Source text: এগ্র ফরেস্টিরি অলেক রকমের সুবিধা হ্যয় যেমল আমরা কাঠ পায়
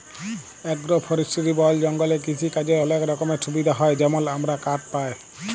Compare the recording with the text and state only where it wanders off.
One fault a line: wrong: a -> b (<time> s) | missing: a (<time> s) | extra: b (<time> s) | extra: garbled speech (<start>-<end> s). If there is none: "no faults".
extra: বল জঙ্গলে কিসিকাজের (1.5 s)